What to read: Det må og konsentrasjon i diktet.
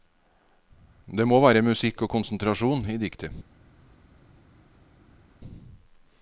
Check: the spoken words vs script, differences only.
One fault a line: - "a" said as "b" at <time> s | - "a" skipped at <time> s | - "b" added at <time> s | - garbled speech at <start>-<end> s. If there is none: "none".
- "være musikk" added at 1.4 s